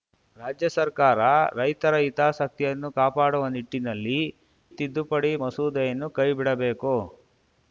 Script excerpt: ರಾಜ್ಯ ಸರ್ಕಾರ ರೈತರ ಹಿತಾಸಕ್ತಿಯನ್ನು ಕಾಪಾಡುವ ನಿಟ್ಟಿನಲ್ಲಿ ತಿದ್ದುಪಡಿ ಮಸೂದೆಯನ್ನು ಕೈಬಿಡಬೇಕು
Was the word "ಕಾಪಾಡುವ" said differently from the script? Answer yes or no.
no